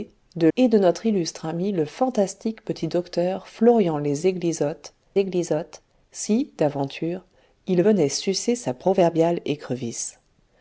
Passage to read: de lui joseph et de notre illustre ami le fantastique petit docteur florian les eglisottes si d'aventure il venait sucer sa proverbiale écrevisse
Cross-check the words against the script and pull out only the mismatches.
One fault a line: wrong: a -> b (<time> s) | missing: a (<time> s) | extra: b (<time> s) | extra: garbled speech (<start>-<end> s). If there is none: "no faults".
missing: lui joseph (0.5 s)
extra: eglisottes (5.2 s)